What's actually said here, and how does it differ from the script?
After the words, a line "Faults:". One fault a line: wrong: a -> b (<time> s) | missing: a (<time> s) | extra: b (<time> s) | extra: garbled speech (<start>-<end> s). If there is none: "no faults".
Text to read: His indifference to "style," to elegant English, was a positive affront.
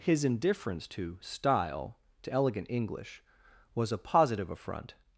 His indifference to "style," to elegant English, was a positive affront.
Faults:
no faults